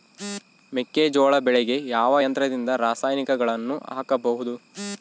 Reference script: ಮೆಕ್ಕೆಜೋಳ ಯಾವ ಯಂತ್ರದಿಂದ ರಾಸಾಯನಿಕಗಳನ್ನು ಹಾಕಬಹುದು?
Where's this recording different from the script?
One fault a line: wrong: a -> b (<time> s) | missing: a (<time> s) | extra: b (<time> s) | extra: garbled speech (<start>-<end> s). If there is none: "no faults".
extra: ಬೆಳೆಗೆ (1.4 s)